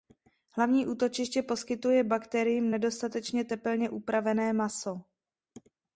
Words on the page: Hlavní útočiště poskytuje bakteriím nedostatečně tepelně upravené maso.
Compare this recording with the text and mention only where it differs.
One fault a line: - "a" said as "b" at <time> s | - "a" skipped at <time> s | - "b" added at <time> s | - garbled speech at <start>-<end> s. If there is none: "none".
none